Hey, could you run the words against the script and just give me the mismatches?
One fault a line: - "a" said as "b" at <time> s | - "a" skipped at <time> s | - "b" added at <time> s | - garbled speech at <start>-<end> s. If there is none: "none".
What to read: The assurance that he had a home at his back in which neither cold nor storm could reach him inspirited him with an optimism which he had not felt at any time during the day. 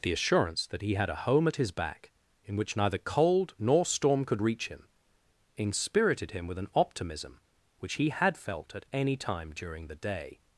- "not" skipped at 8.4 s